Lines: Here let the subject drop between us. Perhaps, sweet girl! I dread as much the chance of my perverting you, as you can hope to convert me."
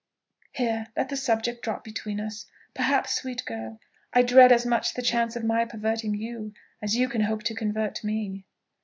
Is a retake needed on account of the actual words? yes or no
no